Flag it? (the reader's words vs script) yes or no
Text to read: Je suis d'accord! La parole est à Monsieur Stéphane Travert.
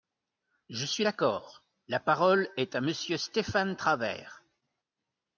no